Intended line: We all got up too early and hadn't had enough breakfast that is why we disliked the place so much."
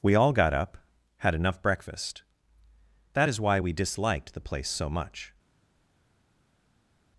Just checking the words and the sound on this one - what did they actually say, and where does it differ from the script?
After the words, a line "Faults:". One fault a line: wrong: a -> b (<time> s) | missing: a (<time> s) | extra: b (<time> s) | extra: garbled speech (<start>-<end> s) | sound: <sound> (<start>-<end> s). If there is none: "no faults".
We all got up had enough breakfast that is why we disliked the place so much."
Faults:
missing: too early and hadn't (0.8 s)